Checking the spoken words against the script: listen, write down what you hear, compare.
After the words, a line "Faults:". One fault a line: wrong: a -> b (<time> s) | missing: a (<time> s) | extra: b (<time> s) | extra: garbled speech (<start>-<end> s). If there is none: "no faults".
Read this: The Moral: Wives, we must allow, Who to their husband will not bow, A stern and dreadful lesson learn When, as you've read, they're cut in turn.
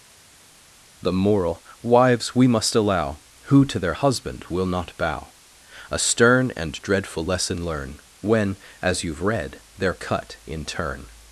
The Moral: Wives, we must allow, Who to their husband will not bow, A stern and dreadful lesson learn When, as you've read, they're cut in turn.
Faults:
no faults